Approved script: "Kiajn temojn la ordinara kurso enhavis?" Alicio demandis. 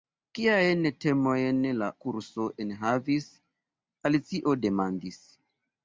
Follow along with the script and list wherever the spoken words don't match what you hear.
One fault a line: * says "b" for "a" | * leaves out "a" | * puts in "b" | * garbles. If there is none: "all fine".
* leaves out "ordinara"